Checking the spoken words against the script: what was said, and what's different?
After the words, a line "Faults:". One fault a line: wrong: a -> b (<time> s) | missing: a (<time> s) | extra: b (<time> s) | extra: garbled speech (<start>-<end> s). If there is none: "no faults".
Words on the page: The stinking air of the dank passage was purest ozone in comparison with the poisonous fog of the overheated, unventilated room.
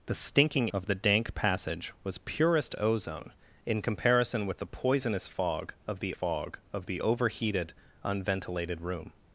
The stinking of the dank passage was purest ozone in comparison with the poisonous fog of the fog of the overheated, unventilated room.
Faults:
missing: air (0.7 s)
extra: fog of the (6.1 s)